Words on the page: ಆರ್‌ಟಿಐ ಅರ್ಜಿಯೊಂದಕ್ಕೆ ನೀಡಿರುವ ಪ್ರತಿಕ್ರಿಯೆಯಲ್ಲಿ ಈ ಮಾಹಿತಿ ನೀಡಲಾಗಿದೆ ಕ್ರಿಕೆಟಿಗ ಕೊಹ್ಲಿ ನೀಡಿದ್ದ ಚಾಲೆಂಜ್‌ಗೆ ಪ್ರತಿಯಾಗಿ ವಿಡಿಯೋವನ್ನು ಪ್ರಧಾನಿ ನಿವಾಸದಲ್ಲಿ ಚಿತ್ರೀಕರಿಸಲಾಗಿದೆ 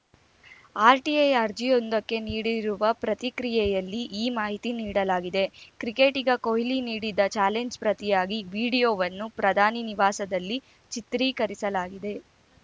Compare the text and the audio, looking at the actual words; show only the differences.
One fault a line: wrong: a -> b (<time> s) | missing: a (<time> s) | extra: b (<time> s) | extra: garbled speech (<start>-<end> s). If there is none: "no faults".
no faults